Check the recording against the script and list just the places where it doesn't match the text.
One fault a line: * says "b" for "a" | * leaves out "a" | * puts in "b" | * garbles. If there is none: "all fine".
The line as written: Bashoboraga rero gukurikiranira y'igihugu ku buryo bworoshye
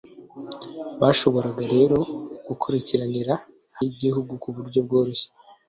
all fine